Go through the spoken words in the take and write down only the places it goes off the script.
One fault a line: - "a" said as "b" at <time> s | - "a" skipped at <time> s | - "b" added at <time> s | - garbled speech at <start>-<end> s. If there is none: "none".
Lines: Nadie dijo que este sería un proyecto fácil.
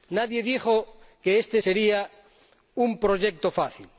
none